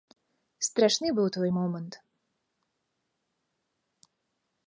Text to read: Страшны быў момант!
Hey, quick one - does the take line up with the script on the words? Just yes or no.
no